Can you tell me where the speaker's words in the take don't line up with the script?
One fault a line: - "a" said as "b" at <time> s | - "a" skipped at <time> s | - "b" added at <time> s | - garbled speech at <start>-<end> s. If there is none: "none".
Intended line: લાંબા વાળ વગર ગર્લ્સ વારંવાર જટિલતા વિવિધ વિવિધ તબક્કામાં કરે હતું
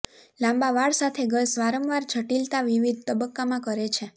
- "વગર" said as "સાથે" at 1.0 s
- "વિવિધ" skipped at 3.0 s
- "હતું" said as "છે" at 3.9 s